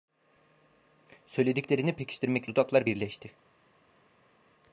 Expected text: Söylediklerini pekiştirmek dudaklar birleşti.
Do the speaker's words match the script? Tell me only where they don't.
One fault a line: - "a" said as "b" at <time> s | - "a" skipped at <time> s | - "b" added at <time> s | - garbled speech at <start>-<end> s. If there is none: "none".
none